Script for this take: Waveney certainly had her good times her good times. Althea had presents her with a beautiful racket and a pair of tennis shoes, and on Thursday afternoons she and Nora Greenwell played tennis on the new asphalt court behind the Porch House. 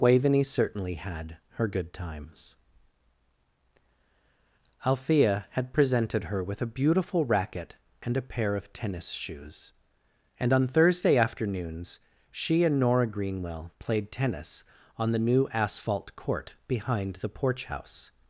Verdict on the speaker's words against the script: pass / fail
fail